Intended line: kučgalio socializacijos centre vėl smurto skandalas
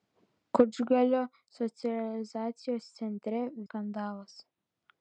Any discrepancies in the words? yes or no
yes